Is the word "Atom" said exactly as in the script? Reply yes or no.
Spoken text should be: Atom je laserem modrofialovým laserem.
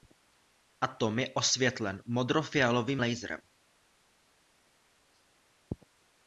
yes